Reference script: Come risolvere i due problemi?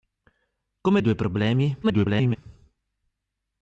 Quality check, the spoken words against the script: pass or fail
fail